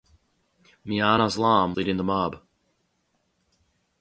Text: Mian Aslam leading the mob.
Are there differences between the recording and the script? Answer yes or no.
no